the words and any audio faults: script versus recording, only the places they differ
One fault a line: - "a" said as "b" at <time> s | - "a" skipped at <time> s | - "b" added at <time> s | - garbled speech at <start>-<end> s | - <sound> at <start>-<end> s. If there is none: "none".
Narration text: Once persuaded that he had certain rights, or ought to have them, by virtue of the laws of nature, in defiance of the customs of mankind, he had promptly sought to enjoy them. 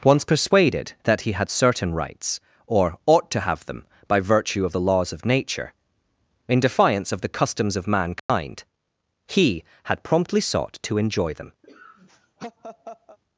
- dropout at 8.2-8.3 s
- laugh at 11.6-13.2 s